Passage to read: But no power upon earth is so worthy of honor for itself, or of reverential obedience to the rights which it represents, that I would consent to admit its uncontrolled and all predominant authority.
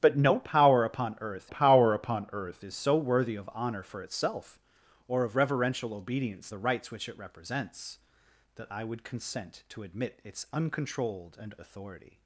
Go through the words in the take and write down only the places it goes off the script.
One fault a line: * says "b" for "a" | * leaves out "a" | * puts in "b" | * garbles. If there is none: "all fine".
* puts in "power upon earth"
* leaves out "to"
* leaves out "all predominant"